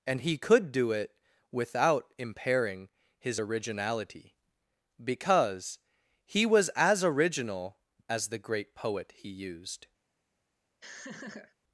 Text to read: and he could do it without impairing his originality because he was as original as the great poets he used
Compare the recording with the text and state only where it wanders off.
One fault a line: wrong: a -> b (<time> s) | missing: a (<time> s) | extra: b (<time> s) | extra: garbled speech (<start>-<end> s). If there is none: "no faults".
wrong: poets -> poet (8.7 s)